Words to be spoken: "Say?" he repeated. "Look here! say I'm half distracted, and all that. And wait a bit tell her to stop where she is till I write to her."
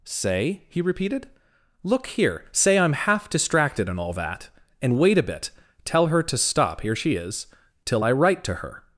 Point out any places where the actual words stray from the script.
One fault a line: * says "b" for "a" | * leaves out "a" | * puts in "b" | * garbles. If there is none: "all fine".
* says "here" for "where"